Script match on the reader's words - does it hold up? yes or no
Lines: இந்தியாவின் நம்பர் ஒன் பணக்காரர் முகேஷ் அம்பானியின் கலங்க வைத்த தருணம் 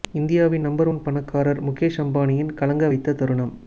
yes